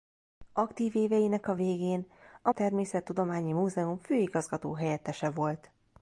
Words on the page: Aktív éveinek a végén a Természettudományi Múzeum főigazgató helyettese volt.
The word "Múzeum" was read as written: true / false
true